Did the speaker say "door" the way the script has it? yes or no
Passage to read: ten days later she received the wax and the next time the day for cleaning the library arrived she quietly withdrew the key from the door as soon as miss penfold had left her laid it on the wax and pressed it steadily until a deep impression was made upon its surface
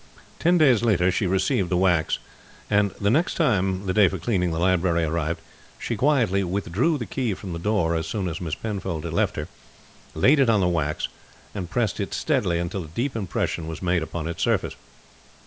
yes